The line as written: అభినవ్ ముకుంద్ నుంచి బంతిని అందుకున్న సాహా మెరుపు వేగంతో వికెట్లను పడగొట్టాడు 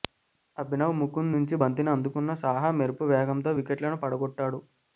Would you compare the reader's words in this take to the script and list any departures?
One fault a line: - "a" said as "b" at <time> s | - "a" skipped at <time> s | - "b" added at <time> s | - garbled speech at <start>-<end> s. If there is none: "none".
none